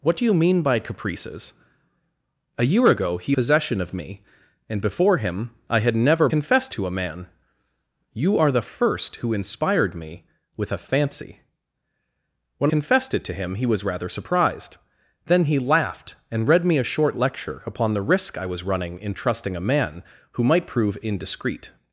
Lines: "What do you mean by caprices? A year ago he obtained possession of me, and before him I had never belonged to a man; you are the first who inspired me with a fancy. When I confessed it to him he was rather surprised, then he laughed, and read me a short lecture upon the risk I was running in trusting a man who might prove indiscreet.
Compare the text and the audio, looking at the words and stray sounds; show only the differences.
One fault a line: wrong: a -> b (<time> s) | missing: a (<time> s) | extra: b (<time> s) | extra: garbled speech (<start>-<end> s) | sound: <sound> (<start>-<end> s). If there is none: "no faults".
missing: obtained (3.4 s)
wrong: belonged -> confessed (6.3 s)
missing: I (12.7 s)